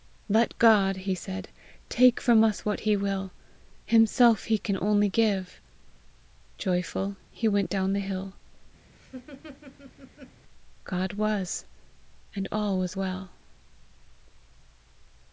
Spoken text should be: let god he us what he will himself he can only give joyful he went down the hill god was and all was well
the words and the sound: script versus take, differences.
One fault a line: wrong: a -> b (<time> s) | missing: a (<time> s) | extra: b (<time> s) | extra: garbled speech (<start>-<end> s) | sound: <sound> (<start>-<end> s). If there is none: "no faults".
extra: said take from (1.1 s)
sound: laugh (8.9-10.4 s)